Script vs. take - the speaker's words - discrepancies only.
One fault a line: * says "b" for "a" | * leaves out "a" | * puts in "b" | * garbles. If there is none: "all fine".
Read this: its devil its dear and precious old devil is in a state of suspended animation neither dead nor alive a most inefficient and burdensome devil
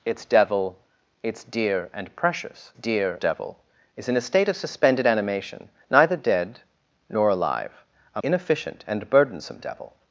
* says "dear" for "old"
* leaves out "most"